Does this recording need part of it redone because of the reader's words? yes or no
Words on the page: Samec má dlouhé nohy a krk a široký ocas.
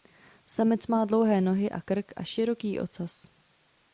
no